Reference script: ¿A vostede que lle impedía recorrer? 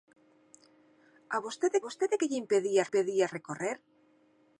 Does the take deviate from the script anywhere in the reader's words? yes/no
yes